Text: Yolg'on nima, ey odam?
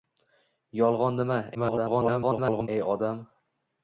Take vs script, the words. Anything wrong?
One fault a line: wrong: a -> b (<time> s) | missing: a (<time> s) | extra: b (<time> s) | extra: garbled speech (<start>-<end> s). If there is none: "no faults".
extra: garbled speech (1.5-2.7 s)